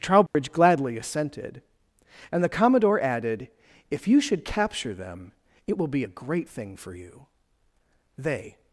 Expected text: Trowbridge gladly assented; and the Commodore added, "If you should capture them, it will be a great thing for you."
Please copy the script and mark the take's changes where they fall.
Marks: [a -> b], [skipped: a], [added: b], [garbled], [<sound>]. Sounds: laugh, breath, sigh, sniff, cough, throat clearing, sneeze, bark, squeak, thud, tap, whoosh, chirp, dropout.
Trowbridge [dropout] gladly assented; and the Commodore added, "If you should capture them, it will be a great thing for you." [added: They]